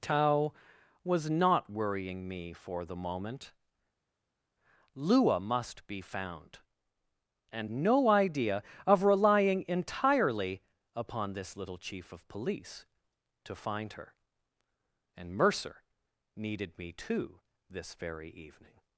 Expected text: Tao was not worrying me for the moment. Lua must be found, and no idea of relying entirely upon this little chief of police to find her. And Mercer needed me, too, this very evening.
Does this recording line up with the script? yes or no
yes